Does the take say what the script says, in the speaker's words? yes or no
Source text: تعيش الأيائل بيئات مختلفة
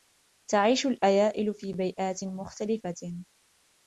no